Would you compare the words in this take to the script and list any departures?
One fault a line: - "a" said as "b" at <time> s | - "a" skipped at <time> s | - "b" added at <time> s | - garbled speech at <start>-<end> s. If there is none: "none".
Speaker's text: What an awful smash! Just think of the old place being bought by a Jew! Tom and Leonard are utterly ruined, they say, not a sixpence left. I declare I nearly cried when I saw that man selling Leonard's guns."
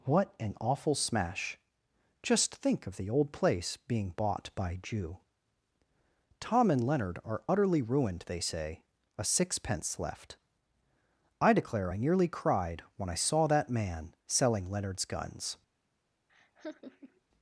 - "a" skipped at 4.8 s
- "not" skipped at 8.8 s